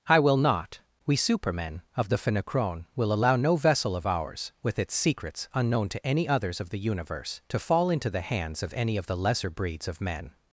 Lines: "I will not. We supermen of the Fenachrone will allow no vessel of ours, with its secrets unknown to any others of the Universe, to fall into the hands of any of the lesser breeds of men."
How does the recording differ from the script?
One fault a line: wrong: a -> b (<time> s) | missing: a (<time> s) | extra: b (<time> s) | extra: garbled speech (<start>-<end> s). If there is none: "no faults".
no faults